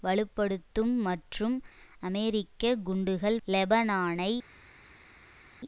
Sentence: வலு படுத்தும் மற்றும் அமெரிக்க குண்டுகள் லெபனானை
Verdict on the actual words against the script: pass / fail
pass